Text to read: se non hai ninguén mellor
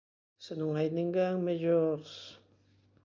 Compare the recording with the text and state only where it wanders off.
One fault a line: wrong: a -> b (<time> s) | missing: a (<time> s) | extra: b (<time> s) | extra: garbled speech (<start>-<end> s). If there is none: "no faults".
no faults